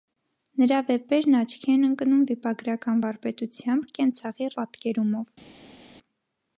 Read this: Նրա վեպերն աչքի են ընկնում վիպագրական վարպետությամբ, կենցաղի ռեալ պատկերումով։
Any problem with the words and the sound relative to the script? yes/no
yes